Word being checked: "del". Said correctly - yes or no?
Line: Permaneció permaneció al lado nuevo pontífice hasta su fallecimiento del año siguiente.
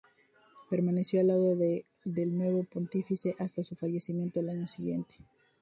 no